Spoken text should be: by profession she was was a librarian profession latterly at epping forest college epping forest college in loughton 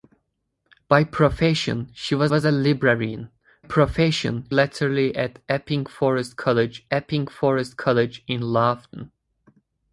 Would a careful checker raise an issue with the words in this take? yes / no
no